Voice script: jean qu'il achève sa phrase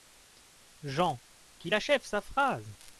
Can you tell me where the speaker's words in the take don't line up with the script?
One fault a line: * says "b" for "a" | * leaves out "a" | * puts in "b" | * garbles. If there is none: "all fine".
all fine